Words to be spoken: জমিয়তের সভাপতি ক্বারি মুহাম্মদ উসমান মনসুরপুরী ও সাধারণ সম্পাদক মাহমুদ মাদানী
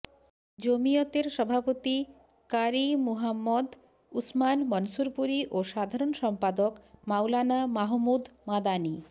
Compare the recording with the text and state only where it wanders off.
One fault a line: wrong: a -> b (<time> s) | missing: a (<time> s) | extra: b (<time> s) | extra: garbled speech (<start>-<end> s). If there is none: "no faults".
extra: মাওলানা (7.1 s)